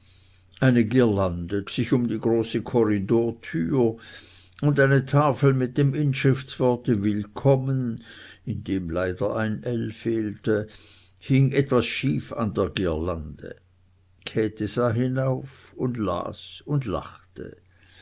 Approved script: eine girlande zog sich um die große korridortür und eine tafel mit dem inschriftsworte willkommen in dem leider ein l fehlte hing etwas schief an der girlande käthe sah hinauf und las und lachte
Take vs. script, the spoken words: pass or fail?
fail